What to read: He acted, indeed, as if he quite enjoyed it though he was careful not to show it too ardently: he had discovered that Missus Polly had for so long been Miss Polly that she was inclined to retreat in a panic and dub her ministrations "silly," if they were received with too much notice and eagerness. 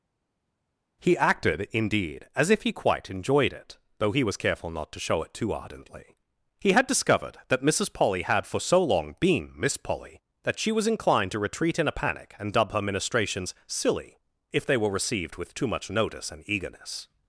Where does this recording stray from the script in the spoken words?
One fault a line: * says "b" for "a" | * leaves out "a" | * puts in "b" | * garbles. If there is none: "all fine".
all fine